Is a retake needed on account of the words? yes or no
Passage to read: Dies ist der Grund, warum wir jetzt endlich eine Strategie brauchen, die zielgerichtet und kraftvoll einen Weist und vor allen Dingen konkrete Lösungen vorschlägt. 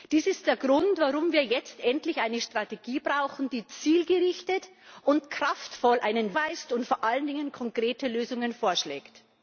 no